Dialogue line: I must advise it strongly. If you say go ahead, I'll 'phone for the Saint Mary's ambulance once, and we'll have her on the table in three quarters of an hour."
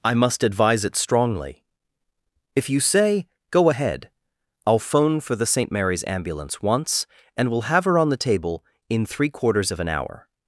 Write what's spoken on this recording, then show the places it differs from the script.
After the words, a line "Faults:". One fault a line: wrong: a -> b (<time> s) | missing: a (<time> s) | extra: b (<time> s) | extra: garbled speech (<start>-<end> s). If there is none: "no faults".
I must advise it strongly. If you say go ahead, I'll 'phone for the Saint Mary's ambulance once, and we'll have her on the table in three quarters of an hour."
Faults:
no faults